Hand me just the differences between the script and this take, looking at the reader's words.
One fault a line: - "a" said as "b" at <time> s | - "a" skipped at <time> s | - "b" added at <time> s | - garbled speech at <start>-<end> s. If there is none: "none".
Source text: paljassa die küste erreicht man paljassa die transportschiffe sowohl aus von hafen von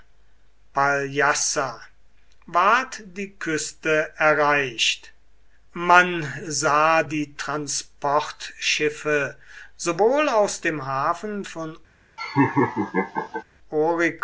- "ward" added at 2.5 s
- "paljassa" said as "sah" at 6.5 s
- "von" said as "dem" at 10.6 s